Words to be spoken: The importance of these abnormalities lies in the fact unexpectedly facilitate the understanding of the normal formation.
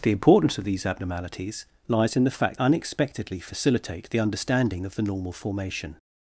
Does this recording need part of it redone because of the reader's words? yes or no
no